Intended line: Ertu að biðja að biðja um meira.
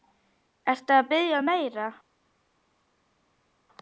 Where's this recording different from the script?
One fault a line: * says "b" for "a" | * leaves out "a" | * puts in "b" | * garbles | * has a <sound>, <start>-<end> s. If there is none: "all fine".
* leaves out "að biðja"